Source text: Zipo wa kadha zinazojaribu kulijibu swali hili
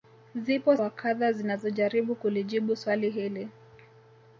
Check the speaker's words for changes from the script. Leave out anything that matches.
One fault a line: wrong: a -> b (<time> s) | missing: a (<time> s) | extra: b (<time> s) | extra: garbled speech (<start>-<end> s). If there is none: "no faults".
no faults